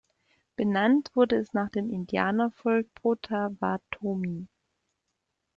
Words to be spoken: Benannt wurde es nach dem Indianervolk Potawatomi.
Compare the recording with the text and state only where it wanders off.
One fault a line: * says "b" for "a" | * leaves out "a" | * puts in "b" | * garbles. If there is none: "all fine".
all fine